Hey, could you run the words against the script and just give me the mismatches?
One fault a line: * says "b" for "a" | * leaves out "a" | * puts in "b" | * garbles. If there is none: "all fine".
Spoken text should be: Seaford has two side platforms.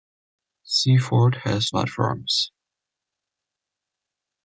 * leaves out "two side"